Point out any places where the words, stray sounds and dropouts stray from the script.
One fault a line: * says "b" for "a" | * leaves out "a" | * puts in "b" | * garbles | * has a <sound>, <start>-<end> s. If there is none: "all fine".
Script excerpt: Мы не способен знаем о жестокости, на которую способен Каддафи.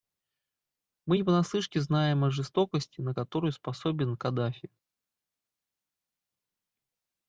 * says "понаслышке" for "способен"